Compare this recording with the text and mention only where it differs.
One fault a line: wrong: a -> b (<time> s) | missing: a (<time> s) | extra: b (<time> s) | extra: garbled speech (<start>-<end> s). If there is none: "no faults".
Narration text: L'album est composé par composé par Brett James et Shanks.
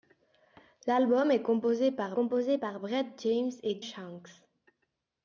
no faults